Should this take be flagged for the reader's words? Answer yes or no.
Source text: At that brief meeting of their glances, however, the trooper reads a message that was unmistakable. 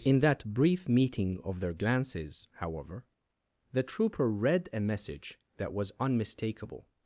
yes